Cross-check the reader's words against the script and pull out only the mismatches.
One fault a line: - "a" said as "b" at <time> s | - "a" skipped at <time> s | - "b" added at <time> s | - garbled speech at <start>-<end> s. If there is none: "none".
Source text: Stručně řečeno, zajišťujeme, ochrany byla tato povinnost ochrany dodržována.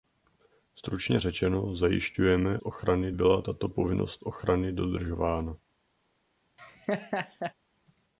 none